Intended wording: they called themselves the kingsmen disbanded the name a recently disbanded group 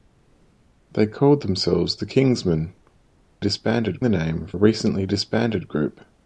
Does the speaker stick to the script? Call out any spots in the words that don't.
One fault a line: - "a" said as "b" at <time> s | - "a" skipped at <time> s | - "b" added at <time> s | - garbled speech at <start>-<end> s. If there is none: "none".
none